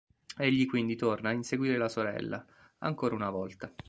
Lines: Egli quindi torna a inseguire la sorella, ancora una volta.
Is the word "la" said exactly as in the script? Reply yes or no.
yes